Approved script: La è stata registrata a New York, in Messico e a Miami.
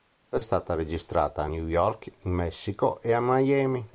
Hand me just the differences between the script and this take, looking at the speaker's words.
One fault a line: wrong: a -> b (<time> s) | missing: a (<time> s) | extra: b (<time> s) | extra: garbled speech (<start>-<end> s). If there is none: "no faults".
no faults